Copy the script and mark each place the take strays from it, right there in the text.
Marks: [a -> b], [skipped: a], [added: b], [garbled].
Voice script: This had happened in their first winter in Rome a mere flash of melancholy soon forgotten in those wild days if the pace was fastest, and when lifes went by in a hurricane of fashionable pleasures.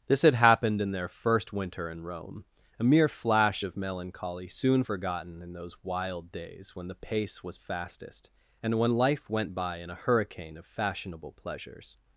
This had happened in their first winter in Rome a mere flash of melancholy soon forgotten in those wild days [if -> when] the pace was fastest, and when [lifes -> life] went by in a hurricane of fashionable pleasures.